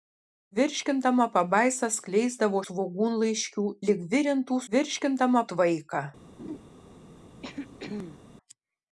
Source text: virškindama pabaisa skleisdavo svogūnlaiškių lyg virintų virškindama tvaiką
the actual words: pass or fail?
pass